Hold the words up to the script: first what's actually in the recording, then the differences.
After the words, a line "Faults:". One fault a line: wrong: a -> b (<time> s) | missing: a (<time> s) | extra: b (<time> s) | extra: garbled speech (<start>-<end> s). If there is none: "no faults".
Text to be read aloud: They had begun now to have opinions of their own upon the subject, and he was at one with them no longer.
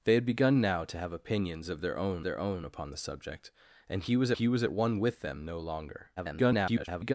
They had begun now to have opinions of their own their own upon the subject, and he was he was at one with them no longer. [garbled]
Faults:
extra: their own (2.2 s)
extra: he was (4.3 s)
extra: garbled speech (6.2-7.1 s)